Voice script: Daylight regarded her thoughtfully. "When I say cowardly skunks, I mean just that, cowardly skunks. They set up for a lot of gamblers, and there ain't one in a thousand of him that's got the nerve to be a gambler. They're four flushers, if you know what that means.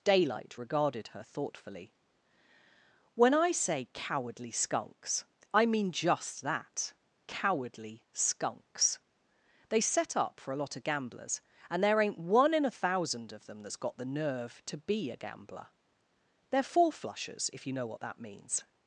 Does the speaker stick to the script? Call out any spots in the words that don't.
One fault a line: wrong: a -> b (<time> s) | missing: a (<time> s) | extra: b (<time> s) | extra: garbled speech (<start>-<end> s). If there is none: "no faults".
wrong: him -> them (13.5 s)